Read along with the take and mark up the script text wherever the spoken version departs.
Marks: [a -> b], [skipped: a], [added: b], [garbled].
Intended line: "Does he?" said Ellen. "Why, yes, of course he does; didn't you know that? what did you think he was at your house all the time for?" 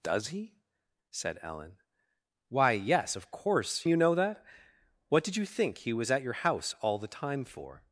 "Does he?" said Ellen. "Why, yes, of course [skipped: he does; didn't] you know that? what did you think he was at your house all the time for?"